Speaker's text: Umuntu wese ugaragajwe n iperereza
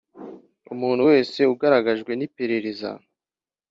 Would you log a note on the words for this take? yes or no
no